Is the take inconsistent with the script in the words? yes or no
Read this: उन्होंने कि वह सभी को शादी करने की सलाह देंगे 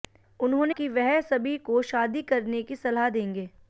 no